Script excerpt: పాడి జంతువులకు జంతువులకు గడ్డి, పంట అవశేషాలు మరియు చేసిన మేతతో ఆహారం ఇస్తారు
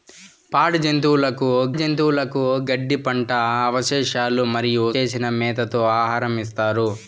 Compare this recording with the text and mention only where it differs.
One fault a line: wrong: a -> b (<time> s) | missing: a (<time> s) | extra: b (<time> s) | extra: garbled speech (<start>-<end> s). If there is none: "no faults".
no faults